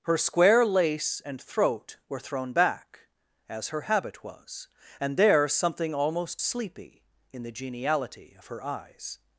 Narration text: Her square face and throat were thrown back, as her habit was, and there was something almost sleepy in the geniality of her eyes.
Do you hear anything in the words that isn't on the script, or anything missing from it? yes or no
yes